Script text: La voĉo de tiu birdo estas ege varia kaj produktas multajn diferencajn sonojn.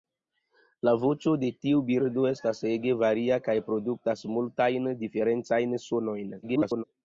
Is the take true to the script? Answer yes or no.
no